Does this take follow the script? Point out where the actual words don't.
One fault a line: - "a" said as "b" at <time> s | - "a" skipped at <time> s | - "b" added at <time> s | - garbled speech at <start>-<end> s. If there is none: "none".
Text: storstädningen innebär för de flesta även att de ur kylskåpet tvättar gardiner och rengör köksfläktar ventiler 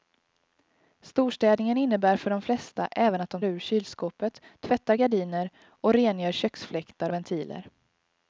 none